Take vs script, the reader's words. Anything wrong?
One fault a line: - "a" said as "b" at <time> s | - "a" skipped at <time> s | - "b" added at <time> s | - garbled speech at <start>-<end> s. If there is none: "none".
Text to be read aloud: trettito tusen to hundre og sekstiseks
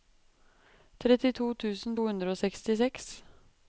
none